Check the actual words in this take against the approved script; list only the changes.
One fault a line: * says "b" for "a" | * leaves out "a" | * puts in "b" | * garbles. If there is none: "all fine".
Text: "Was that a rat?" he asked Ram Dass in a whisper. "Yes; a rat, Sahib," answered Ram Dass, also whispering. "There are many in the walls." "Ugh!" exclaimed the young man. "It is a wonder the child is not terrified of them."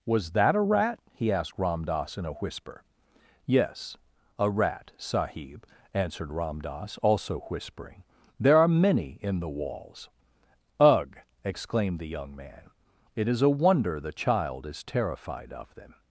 * leaves out "not"